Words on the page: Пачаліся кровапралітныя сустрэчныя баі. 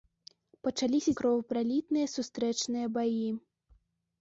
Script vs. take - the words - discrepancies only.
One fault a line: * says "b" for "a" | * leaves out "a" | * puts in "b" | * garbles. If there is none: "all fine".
all fine